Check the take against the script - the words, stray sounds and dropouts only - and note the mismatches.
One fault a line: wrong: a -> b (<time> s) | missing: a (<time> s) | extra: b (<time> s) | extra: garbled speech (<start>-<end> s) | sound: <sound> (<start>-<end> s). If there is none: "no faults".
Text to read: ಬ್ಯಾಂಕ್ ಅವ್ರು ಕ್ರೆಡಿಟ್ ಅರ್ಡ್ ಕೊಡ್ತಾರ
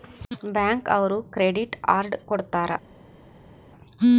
no faults